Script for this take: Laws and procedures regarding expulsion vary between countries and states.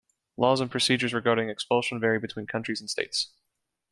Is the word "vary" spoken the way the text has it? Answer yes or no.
yes